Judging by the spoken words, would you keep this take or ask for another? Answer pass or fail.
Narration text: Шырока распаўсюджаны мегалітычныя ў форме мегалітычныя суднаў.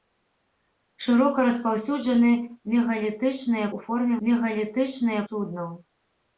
pass